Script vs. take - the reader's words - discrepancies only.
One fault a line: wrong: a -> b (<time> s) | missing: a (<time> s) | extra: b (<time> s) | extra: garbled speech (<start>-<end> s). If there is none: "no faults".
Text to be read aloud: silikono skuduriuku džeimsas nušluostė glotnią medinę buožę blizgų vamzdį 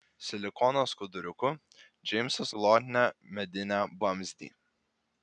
missing: nušluostė (2.5 s)
missing: buožę blizgų (3.8 s)